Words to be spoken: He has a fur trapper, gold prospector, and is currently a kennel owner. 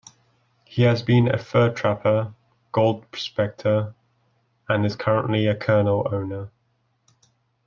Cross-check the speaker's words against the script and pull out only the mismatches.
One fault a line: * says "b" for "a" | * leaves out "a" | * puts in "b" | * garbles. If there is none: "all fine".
* puts in "been"